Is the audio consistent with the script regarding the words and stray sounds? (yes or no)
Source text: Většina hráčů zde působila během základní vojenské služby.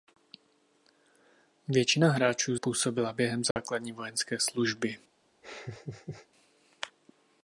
no